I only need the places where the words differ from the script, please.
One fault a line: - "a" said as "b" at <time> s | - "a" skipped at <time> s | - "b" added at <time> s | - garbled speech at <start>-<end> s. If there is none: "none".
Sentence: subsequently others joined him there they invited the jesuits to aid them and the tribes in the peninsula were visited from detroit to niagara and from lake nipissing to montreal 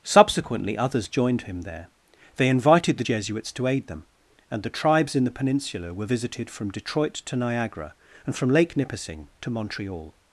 none